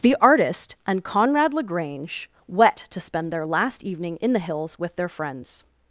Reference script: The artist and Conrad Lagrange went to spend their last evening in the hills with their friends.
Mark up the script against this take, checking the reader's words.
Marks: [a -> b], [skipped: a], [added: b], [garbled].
The artist and Conrad Lagrange [went -> wet] to spend their last evening in the hills with their friends.